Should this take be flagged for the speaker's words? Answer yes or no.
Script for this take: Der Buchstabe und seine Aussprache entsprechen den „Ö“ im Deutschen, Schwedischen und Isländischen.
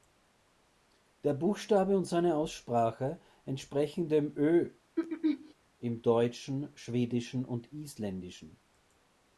yes